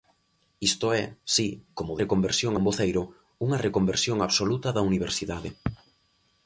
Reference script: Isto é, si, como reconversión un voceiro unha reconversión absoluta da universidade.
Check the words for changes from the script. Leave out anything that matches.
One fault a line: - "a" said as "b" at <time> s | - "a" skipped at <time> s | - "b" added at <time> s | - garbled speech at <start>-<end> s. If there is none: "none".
none